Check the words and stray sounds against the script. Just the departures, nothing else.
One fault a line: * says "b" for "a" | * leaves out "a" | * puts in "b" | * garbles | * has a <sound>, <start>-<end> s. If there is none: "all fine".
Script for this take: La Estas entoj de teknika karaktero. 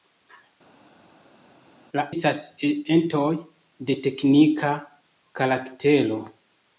all fine